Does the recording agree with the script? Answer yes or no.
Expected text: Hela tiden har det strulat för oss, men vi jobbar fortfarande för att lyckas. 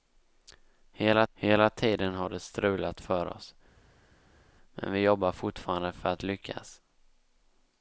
no